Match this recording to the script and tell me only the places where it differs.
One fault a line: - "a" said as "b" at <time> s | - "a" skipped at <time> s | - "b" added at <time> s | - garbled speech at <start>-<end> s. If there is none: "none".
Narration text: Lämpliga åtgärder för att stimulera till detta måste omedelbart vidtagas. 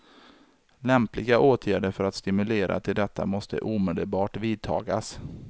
none